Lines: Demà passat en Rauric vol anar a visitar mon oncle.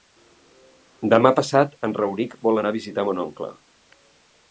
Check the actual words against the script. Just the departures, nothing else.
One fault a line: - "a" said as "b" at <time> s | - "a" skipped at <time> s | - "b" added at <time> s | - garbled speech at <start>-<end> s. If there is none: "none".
none